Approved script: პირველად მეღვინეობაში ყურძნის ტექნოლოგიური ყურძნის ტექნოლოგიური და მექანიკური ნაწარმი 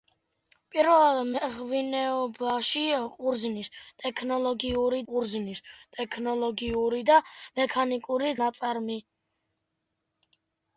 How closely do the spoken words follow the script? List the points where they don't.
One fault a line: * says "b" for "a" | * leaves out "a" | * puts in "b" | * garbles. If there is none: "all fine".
all fine